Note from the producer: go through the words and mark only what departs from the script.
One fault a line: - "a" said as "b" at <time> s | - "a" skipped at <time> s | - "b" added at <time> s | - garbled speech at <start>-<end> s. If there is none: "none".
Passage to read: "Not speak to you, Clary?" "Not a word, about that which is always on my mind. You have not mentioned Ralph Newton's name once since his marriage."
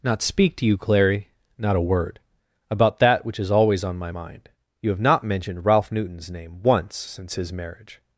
none